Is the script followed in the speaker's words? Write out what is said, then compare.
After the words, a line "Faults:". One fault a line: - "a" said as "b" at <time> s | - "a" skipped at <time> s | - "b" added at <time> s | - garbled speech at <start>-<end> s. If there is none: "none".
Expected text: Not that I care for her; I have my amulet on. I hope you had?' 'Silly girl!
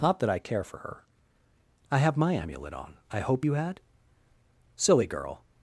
Not that I care for her; I have my amulet on. I hope you had?' 'Silly girl!
Faults:
none